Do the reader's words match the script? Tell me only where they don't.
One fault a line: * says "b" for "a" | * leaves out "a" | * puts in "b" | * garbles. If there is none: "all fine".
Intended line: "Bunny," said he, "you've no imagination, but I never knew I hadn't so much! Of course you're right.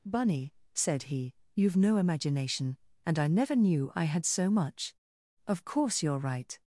* says "and" for "but"
* says "had" for "hadn't"